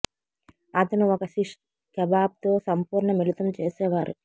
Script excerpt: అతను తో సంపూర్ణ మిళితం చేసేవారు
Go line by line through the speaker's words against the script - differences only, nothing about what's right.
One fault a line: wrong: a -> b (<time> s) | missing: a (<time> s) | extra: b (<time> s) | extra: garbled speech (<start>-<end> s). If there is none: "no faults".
extra: ఒక శిష్ కెబాబ్ (1.1 s)